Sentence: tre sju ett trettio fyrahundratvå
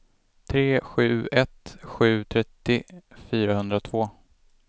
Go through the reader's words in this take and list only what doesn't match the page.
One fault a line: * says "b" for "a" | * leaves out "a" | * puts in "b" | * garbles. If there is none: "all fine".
* puts in "sju"